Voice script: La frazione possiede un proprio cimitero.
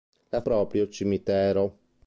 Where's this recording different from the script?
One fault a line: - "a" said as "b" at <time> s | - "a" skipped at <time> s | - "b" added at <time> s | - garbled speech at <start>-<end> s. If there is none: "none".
- "frazione possiede un" skipped at 0.4 s